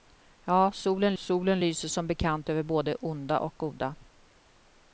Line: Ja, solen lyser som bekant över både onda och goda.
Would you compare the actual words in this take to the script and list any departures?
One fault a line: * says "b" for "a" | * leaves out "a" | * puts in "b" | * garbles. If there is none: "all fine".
* puts in "solen"